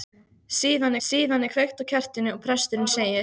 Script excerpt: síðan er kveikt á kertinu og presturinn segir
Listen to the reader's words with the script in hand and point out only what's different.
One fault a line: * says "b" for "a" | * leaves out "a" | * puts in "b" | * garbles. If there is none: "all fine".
* puts in "síðan"